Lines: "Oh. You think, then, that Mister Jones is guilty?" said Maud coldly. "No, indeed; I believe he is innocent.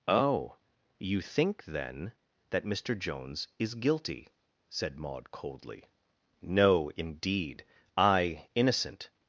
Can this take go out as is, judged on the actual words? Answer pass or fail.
fail